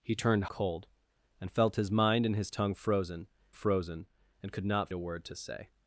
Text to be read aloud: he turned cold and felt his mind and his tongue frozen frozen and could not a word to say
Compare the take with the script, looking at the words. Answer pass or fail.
pass